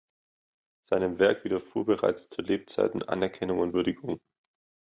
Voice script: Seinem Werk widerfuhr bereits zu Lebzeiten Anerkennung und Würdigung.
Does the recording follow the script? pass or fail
pass